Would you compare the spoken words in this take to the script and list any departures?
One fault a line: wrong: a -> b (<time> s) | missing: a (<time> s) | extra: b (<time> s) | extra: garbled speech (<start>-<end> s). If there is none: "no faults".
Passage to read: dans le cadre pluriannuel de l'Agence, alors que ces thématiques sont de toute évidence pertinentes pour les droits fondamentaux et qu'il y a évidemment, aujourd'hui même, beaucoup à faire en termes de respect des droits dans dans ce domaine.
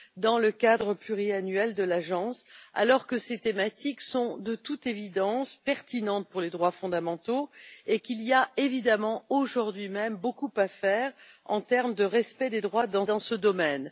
no faults